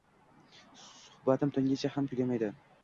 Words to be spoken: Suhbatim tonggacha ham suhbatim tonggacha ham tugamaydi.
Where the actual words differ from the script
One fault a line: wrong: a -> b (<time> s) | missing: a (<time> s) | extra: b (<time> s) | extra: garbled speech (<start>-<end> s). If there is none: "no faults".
missing: suhbatim tonggacha ham (2.1 s)